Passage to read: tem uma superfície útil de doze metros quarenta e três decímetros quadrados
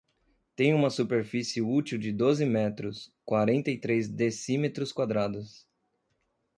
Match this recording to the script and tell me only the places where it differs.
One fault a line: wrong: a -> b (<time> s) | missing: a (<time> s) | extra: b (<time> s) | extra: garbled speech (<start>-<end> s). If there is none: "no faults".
no faults